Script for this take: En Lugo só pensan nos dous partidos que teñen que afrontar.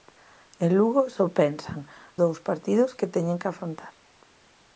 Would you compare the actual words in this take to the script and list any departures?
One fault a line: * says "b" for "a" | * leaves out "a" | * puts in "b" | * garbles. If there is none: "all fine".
* leaves out "nos"